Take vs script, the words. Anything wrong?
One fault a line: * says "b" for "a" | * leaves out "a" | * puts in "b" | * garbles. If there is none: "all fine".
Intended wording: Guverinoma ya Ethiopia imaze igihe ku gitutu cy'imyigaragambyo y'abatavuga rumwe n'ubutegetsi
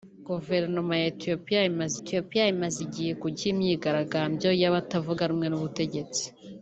* puts in "Ethiopia imaze"
* leaves out "gitutu"